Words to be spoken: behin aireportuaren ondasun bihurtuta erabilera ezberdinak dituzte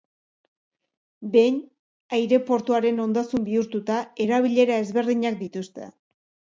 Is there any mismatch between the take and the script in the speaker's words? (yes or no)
no